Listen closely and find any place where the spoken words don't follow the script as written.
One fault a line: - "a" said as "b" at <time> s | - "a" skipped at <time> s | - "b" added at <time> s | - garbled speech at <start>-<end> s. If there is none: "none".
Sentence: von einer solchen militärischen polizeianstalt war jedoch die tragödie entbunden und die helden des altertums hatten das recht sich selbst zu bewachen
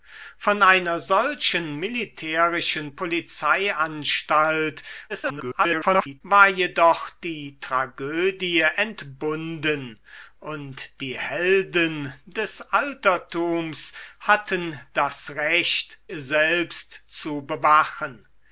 - garbled speech at 5.1-6.2 s
- "sich" skipped at 16.0 s